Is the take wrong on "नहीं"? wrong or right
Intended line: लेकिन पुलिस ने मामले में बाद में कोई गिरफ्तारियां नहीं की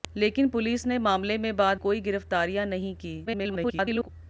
right